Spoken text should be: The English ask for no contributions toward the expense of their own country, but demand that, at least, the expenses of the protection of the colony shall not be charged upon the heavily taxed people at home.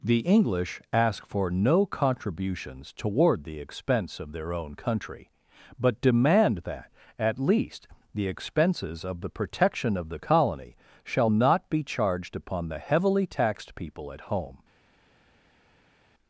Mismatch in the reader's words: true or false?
false